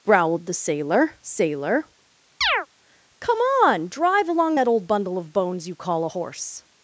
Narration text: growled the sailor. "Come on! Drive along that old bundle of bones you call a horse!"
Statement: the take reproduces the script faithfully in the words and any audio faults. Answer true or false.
false